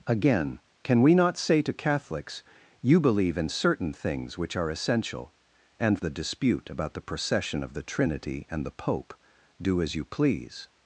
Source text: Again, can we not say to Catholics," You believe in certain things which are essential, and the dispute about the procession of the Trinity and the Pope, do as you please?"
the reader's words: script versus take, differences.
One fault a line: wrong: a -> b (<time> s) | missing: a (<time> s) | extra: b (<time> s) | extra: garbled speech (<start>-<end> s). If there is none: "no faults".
no faults